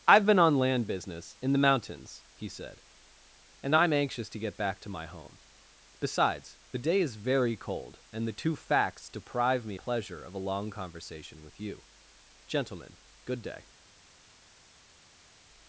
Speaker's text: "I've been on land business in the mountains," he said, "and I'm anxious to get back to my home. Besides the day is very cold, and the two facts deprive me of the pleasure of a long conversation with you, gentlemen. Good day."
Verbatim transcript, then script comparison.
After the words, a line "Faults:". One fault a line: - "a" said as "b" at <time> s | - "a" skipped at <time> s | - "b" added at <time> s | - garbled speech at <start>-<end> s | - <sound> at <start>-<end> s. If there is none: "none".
"I've been on land business in the mountains," he said, "and I'm anxious to get back to my home. Besides the day is very cold, and the two facts deprive me pleasure of a long conversation with you, gentlemen. Good day."
Faults:
- "of the" skipped at 9.8 s